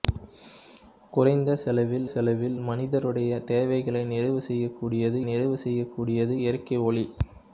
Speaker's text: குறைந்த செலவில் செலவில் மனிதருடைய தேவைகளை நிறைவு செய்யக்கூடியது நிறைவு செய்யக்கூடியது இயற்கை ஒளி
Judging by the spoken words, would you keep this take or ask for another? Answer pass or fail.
pass